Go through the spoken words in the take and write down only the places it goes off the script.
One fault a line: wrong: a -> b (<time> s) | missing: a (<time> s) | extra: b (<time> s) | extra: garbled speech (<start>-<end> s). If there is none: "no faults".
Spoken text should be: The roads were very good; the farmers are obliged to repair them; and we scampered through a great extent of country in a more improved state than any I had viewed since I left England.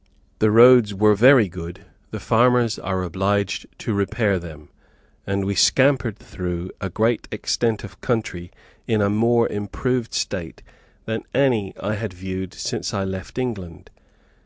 no faults